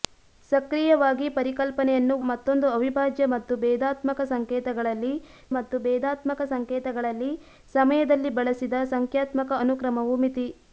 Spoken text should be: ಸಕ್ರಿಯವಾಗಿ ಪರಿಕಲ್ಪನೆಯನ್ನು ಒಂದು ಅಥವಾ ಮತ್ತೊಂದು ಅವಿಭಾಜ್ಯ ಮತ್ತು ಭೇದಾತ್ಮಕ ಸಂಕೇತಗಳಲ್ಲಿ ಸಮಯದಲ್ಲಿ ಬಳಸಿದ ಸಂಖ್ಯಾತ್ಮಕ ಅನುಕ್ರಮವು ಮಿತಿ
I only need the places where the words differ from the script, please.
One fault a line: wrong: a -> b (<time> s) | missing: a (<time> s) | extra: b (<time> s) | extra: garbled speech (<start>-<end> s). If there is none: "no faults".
wrong: ಒಂದು ಅಥವಾ ಮತ್ತೊಂದು ಅವಿಭಾಜ್ಯ -> ಮತ್ತೊಂದು ಅವಿಭಾಜ್ಯ ಮತ್ತು ಭೇದಾತ್ಮಕ ಸಂಕೇತಗಳಲ್ಲಿ (2.3 s)